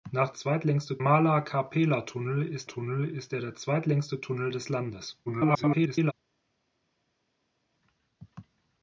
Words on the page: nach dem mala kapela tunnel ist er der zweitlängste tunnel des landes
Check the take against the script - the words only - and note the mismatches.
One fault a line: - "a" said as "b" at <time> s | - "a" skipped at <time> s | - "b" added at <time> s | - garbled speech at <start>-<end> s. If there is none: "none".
- "dem" said as "zweitlängste" at 0.3 s
- "tunnel ist" added at 2.6 s
- garbled speech at 5.3-6.1 s